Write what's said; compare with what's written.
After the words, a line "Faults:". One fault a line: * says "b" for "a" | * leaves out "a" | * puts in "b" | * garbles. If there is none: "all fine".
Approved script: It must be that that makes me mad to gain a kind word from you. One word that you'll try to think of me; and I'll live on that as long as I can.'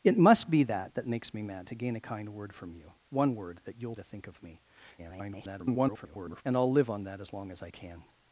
It must be that that makes me mad to gain a kind word from you. One word that you'll to think of me; [garbled] and I'll live on that as long as I can.'
Faults:
* leaves out "try"
* garbles